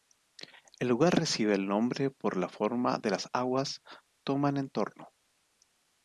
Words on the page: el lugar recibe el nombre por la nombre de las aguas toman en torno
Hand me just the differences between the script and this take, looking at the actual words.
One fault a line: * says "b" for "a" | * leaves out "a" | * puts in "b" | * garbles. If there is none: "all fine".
* says "forma" for "nombre"